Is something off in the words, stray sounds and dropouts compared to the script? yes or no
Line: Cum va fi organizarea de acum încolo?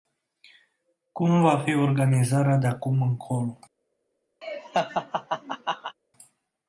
yes